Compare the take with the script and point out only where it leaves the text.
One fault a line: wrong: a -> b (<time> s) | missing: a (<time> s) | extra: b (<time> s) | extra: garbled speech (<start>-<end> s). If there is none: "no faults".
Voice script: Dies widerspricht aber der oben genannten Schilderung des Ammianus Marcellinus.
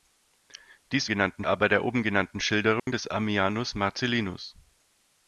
wrong: widerspricht -> genannten (1.1 s)